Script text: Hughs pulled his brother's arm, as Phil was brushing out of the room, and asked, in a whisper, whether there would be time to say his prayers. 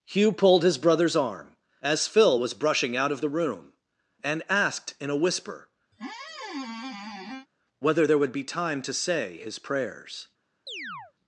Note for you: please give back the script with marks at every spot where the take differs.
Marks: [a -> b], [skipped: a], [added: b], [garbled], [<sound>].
[Hughs -> Hugh] pulled his brother's arm, as Phil was brushing out of the room, and asked, in a whisper, [squeak] whether there would be time to say his prayers. [chirp]